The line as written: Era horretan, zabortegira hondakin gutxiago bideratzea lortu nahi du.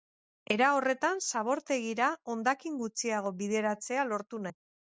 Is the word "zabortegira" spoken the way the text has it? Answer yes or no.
yes